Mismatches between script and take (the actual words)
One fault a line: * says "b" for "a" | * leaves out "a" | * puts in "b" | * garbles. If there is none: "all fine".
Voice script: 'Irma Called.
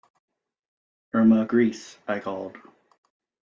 * puts in "Grese I"